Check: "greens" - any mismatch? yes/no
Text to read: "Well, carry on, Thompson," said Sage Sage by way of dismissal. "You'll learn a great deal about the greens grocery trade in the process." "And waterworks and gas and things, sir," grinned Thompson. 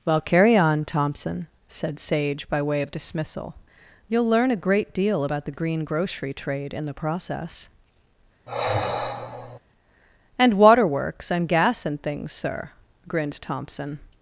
yes